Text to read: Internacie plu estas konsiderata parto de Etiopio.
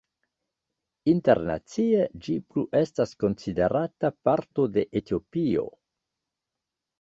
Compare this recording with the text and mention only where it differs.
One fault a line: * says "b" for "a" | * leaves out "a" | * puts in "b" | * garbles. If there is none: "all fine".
* puts in "ĝi"